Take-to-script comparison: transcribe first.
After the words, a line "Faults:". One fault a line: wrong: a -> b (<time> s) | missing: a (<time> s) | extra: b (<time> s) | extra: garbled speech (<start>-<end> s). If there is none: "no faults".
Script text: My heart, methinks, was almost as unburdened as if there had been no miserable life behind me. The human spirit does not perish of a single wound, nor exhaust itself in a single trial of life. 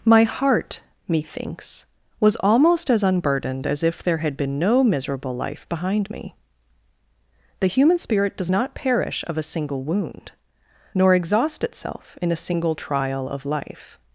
My heart, methinks, was almost as unburdened as if there had been no miserable life behind me. The human spirit does not perish of a single wound, nor exhaust itself in a single trial of life.
Faults:
no faults